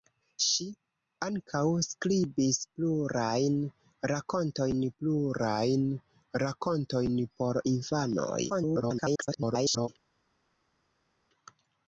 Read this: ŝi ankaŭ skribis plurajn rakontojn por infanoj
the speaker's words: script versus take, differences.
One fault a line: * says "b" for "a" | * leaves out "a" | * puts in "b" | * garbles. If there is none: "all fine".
* puts in "plurajn rakontojn"
* garbles